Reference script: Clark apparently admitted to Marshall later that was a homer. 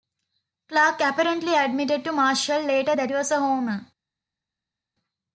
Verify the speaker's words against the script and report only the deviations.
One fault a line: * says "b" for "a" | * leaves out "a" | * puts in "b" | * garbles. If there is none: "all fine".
all fine